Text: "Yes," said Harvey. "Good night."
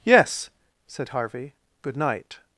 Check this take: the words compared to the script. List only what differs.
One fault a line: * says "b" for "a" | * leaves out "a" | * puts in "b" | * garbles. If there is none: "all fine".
all fine